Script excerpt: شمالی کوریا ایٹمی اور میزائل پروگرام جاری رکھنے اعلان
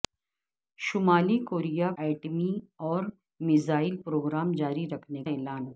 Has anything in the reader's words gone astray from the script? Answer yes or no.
no